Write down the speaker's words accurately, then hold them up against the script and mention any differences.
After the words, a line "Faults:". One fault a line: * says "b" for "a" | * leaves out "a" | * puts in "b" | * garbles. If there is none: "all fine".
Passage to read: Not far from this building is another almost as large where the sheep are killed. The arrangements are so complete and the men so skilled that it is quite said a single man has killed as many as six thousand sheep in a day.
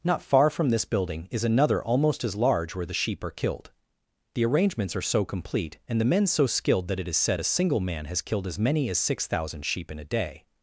Not far from this building is another almost as large where the sheep are killed. The arrangements are so complete and the men so skilled that it is said a single man has killed as many as six thousand sheep in a day.
Faults:
* leaves out "quite"